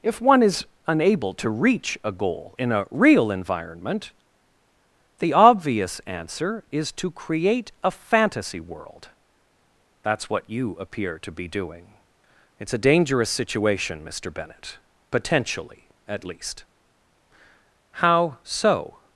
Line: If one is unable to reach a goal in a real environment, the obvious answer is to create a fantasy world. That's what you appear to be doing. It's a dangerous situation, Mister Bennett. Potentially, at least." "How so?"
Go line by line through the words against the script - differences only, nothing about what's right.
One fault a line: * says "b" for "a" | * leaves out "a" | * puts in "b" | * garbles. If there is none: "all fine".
all fine